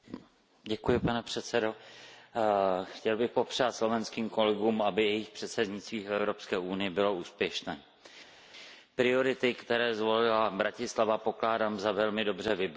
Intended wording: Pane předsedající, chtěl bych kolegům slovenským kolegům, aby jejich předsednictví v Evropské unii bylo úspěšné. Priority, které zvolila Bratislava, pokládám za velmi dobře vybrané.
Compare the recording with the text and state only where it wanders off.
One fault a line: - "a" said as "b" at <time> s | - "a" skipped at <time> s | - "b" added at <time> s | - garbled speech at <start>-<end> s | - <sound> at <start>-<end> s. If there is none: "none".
- "kolegům" said as "popřát" at 3.3 s